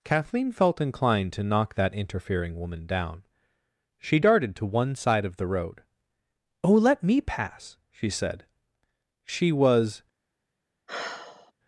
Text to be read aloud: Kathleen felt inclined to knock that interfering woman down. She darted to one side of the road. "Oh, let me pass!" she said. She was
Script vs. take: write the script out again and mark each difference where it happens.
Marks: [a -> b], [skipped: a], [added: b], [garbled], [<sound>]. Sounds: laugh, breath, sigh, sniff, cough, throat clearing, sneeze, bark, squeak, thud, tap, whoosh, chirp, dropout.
Kathleen felt inclined to knock that interfering woman down. She darted to one side of the road. "Oh, let me pass!" she said. She was [sigh]